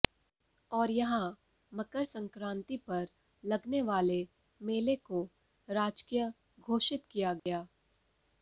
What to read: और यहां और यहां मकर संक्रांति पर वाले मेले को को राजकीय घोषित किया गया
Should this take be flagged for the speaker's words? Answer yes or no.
yes